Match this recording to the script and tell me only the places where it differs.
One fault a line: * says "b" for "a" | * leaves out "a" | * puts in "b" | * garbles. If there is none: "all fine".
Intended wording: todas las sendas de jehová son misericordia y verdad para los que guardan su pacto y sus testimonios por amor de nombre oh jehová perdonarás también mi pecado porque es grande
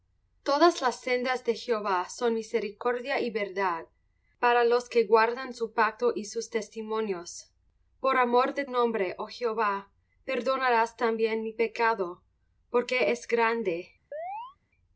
all fine